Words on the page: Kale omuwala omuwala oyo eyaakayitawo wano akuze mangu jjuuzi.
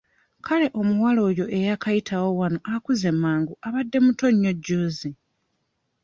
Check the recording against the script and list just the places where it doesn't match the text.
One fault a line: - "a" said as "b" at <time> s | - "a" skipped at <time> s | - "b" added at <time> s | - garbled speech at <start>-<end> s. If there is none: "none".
- "omuwala" skipped at 1.2 s
- "abadde muto nnyo" added at 3.7 s